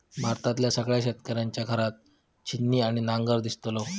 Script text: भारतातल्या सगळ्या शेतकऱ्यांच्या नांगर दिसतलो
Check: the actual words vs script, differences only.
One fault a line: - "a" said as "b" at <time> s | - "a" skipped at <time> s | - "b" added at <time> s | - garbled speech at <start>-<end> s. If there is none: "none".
- "घरात छिन्नी आणि" added at 1.6 s